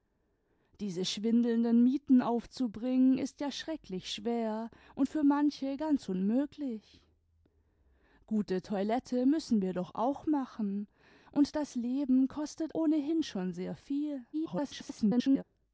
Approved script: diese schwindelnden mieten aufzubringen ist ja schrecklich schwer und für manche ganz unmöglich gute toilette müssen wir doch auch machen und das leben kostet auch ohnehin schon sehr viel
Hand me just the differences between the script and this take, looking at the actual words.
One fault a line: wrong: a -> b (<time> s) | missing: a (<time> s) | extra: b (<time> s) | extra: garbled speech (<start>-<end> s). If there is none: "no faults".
missing: auch (12.8 s)
extra: garbled speech (14.3-15.4 s)